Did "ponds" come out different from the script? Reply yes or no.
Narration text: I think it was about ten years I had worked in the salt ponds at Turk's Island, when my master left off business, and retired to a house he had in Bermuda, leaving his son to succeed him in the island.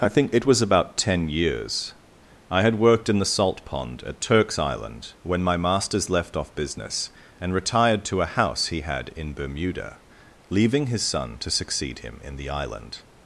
yes